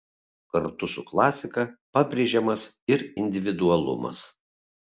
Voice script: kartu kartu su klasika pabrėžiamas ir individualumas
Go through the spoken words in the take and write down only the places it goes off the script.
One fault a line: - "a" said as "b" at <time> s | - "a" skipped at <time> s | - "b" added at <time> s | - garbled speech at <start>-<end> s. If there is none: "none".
- "kartu" skipped at 0.9 s